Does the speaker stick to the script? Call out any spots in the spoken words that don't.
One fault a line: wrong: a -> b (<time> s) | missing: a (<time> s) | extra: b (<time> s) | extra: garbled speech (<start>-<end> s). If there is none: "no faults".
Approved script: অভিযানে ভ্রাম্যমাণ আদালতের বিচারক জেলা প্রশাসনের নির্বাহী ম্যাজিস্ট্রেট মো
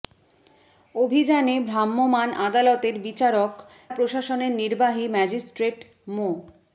missing: জেলা (3.5 s)